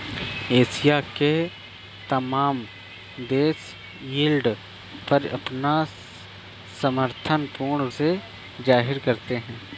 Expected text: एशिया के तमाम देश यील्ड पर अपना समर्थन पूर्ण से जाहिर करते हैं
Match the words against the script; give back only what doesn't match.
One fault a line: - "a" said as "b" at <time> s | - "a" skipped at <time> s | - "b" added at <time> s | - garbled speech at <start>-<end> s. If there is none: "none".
none